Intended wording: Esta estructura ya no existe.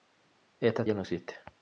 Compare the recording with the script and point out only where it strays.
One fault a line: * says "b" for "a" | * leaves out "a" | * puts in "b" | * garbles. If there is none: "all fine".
* leaves out "estructura"